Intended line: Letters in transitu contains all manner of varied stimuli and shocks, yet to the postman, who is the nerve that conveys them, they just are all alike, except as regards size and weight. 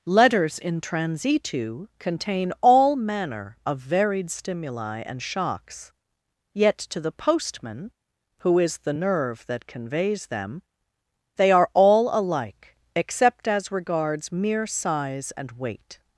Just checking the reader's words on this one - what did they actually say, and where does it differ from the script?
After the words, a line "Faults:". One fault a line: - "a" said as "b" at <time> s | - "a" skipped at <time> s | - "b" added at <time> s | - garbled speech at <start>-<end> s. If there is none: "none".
Letters in transitu contain all manner of varied stimuli and shocks, yet to the postman, who is the nerve that conveys them, they are all alike, except as regards mere size and weight.
Faults:
- "contains" said as "contain" at 2.0 s
- "just" skipped at 11.5 s
- "mere" added at 14.3 s